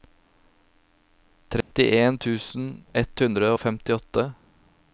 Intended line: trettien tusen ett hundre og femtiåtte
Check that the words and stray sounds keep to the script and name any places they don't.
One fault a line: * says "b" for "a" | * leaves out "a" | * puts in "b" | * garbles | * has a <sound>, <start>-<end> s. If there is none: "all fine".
* has a dropout, 1.6-1.7 s